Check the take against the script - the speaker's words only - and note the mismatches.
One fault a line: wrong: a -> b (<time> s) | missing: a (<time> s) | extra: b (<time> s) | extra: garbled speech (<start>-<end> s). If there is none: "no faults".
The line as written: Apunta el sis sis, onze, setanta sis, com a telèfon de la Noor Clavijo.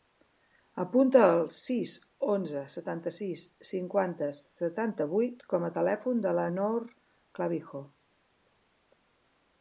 extra: onze setanta (2.3 s)
wrong: onze -> cinquanta (3.7 s)
wrong: sis -> vuit (5.1 s)